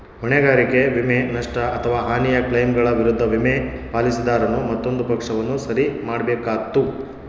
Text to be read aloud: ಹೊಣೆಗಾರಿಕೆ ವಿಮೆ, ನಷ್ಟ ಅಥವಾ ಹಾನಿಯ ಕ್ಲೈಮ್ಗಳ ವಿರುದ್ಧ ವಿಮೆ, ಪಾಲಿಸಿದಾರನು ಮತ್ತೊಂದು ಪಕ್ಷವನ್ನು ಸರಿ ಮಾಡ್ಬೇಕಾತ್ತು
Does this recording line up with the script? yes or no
yes